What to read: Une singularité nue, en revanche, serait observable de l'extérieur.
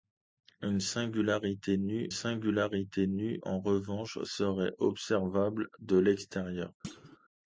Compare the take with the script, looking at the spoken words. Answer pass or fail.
fail